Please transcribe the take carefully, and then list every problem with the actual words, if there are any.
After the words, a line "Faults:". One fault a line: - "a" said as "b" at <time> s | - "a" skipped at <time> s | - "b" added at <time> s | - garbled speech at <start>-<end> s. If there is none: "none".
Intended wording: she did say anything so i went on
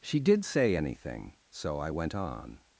she did say anything so i went on
Faults:
none